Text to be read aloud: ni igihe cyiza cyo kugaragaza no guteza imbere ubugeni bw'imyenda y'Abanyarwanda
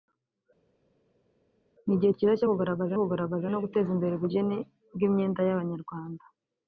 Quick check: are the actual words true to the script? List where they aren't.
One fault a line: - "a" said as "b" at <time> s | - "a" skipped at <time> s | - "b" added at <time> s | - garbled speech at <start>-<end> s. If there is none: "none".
- "kugaragaza" added at 3.0 s